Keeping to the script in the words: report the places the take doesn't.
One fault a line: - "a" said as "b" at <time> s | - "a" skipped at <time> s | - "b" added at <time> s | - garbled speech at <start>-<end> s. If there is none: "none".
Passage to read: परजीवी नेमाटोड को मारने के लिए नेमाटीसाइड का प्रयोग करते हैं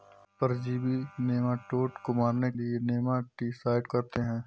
- "के" skipped at 2.5 s
- "का प्रयोग" skipped at 3.9 s